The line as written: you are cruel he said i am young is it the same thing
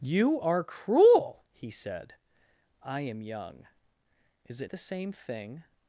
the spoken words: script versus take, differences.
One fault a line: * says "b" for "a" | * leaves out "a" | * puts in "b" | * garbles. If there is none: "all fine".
all fine